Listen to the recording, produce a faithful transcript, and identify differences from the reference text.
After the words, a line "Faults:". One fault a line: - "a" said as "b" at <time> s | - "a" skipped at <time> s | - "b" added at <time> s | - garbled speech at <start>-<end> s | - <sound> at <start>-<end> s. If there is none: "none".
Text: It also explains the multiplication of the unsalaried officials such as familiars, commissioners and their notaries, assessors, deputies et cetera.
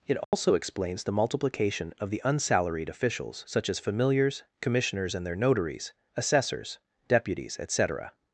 It also explains the multiplication of the unsalaried officials such as familiars, commissioners and their notaries, assessors, deputies et cetera.
Faults:
- dropout at 0.2-0.3 s